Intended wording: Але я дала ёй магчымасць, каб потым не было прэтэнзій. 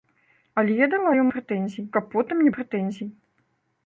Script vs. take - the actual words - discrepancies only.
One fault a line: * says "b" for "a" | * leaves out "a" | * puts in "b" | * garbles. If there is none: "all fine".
* says "прэтэнзій" for "магчымасць"
* leaves out "было"